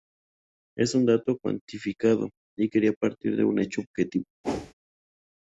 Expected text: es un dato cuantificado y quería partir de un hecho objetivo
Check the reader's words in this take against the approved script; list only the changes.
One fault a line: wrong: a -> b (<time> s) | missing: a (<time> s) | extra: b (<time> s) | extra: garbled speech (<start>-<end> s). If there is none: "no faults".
no faults